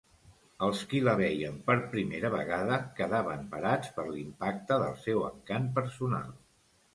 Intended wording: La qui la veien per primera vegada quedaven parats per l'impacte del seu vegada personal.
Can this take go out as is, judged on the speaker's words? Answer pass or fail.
fail